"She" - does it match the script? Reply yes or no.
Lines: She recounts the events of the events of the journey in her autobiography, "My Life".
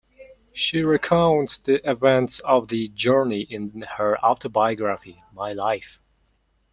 yes